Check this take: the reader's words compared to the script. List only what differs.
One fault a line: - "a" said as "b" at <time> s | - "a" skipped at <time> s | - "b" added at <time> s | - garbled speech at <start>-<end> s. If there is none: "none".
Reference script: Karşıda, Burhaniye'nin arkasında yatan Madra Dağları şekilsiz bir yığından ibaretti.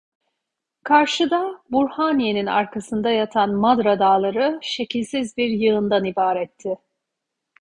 none